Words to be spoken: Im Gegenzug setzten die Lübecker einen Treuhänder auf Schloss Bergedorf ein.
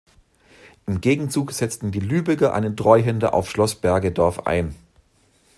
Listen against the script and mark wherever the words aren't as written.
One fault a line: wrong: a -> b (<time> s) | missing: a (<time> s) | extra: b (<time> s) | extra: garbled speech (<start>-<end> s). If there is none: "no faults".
no faults